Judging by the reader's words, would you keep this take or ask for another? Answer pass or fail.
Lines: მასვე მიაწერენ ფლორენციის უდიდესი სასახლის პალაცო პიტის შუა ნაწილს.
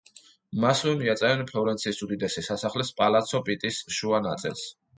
pass